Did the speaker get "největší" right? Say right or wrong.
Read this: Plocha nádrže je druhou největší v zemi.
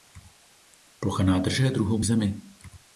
wrong